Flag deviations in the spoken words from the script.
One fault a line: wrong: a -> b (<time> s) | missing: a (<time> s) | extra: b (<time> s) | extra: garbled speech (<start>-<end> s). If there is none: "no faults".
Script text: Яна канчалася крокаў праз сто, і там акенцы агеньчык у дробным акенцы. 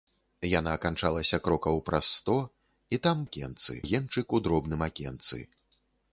no faults